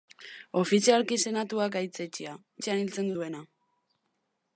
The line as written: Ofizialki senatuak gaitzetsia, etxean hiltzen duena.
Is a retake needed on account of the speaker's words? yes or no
no